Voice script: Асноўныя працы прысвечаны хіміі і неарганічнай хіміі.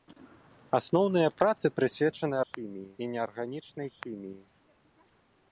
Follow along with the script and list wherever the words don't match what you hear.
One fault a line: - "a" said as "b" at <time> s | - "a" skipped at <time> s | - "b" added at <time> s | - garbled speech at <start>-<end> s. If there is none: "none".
none